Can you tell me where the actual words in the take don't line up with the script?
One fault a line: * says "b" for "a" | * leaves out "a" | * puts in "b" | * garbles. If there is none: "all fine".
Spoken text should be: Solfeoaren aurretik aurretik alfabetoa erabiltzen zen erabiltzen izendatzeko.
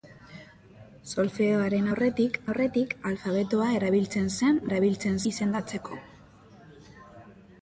all fine